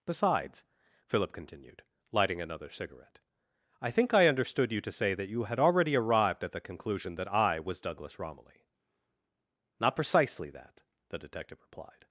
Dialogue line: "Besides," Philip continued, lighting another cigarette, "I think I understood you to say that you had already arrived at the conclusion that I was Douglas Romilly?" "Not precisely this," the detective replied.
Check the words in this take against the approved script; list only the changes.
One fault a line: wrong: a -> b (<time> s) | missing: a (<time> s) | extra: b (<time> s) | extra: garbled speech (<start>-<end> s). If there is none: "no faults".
wrong: this -> that (10.5 s)